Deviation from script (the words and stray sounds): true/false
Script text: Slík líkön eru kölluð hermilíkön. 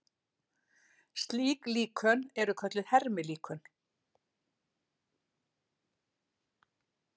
false